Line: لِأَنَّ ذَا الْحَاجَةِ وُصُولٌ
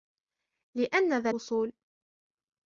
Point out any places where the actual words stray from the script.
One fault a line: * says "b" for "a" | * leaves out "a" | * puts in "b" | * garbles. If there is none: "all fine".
* leaves out "الْحَاجَةِ"